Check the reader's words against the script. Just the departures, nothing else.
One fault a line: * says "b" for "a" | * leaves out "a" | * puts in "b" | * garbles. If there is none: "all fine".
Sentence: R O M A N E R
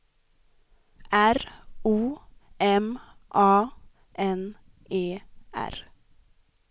all fine